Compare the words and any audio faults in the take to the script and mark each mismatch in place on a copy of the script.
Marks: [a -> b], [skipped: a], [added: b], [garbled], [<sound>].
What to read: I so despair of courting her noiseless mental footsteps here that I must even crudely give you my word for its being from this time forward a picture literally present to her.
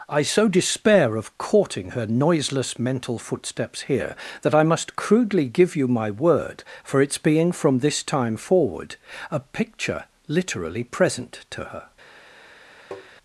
I so despair of courting her noiseless mental footsteps here that I must [skipped: even] crudely give you my word for its being from this time forward a picture literally present to her. [tap]